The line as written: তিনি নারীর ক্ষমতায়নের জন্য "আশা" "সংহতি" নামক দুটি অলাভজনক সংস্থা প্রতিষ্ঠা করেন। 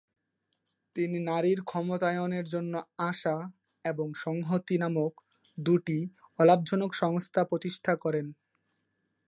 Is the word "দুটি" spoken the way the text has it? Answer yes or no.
yes